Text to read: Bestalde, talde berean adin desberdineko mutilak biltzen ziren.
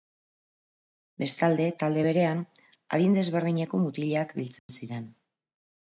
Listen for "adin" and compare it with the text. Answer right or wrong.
right